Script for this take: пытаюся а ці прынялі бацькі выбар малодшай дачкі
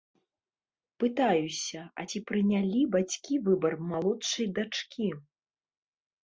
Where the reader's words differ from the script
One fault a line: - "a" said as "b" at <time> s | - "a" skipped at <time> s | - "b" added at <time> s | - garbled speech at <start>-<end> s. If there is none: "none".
none